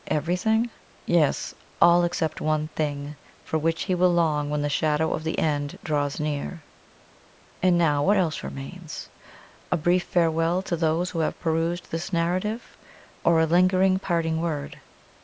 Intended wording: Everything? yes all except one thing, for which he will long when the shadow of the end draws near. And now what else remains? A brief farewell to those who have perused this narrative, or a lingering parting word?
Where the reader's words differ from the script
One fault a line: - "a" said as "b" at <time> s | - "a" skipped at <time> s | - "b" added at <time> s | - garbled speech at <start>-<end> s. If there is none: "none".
none